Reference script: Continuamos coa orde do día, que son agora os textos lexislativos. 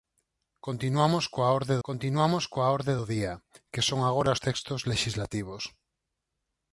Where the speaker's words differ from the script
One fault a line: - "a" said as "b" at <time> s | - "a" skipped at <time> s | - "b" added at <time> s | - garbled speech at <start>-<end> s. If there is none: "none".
- "continuamos coa orde" added at 1.9 s